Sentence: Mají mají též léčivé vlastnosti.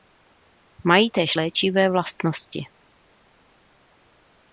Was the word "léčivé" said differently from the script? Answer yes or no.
no